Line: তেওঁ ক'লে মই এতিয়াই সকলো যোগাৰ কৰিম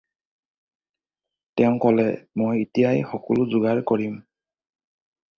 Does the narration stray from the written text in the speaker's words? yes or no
no